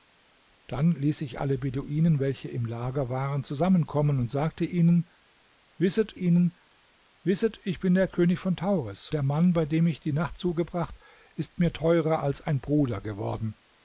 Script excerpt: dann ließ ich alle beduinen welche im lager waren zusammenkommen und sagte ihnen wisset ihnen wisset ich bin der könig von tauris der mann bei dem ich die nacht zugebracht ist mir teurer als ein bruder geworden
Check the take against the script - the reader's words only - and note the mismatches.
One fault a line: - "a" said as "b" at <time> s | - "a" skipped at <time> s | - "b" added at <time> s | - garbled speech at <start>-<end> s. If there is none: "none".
none